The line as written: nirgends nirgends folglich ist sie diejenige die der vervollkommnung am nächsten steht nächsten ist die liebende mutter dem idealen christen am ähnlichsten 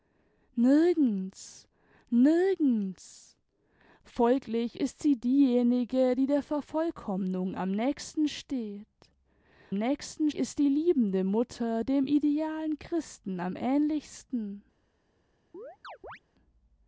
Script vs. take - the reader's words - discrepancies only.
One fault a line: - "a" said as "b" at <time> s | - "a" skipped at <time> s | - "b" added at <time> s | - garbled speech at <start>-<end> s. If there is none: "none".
none